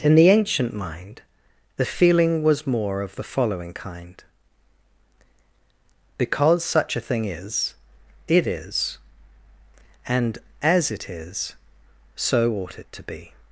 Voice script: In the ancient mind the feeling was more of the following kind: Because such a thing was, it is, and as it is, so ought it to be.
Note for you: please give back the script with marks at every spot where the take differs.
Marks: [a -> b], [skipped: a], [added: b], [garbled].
In the ancient mind the feeling was more of the following kind: Because such a thing [was, -> is] it is, and as it is, so ought it to be.